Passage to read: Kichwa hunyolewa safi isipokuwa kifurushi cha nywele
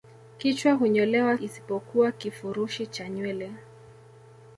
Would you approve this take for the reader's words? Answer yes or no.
no